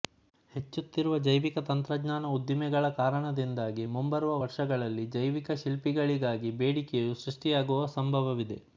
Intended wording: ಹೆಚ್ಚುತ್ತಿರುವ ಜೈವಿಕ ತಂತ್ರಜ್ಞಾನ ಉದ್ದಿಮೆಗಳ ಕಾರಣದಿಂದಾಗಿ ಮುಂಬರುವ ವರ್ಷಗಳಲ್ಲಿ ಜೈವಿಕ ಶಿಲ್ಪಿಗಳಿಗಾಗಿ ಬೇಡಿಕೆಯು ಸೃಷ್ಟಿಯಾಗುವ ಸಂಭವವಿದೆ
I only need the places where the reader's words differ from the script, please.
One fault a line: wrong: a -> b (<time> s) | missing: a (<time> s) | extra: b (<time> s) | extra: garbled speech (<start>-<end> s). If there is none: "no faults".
no faults